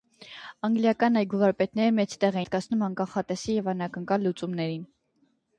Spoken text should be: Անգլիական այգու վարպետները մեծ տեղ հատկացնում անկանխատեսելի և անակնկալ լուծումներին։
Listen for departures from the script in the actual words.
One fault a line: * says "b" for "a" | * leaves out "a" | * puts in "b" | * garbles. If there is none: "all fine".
all fine